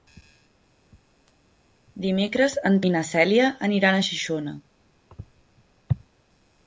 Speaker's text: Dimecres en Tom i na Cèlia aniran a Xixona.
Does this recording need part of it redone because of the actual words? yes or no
yes